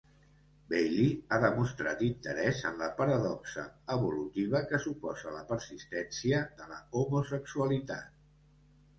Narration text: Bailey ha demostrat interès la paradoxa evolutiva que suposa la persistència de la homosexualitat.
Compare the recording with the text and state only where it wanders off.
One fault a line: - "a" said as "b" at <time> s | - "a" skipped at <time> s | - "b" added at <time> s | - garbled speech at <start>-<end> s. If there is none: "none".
- "en" added at 2.7 s